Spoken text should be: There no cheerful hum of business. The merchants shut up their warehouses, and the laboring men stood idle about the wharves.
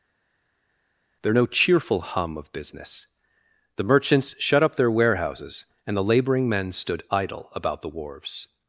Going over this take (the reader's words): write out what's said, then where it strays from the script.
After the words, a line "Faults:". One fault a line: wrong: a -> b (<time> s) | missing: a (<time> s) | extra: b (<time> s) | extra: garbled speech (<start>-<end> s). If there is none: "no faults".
There no cheerful hum of business. The merchants shut up their warehouses, and the laboring men stood idle about the wharves.
Faults:
no faults